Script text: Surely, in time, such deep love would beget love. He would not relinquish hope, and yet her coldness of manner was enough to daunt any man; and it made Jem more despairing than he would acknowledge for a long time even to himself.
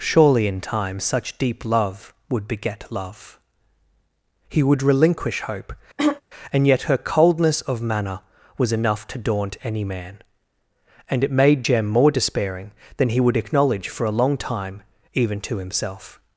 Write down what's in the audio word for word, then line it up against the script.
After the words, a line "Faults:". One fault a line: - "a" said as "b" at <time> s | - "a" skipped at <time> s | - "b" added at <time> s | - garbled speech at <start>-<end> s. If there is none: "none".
Surely, in time, such deep love would beget love. He would relinquish hope, and yet her coldness of manner was enough to daunt any man; and it made Jem more despairing than he would acknowledge for a long time even to himself.
Faults:
- "not" skipped at 4.8 s